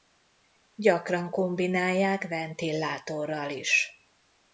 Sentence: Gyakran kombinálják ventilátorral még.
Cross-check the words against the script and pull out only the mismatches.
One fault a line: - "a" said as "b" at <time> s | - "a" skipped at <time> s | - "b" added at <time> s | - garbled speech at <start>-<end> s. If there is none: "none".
- "még" said as "is" at 3.5 s